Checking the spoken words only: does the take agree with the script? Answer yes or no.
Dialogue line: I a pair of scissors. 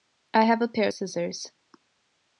no